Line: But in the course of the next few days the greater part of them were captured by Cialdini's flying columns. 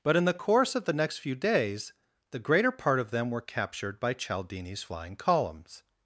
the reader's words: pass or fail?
pass